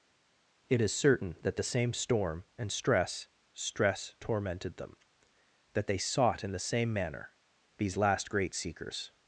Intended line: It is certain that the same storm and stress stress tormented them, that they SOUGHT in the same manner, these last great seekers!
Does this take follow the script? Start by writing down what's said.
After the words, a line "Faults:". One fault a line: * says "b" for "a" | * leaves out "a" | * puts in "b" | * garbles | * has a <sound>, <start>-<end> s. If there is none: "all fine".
It is certain that the same storm and stress stress tormented them, that they SOUGHT in the same manner, these last great seekers!
Faults:
all fine